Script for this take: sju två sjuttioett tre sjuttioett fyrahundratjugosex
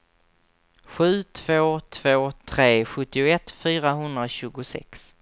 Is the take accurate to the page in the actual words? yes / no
no